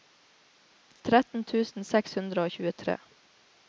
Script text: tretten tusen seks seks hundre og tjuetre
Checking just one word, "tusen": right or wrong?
right